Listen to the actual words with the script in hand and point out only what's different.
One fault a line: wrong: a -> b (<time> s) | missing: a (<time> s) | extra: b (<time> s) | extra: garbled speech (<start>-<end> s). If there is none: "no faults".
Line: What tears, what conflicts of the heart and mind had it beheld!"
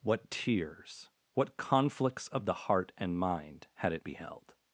no faults